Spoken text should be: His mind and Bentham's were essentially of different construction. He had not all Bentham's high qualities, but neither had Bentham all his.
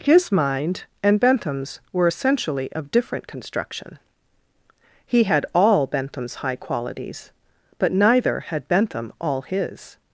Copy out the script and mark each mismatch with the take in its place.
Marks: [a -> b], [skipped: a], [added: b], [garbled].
His mind and Bentham's were essentially of different construction. He had [skipped: not] all Bentham's high qualities, but neither had Bentham all his.